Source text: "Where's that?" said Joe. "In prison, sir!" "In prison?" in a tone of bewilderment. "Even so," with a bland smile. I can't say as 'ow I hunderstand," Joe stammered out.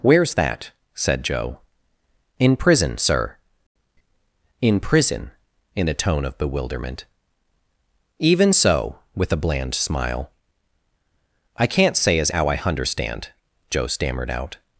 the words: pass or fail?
pass